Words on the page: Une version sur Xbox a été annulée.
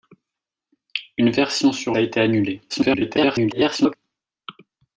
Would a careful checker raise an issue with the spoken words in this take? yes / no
yes